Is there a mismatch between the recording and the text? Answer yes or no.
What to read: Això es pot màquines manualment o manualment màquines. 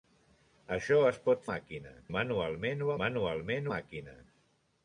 no